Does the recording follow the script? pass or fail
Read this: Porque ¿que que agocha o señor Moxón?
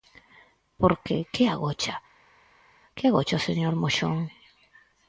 fail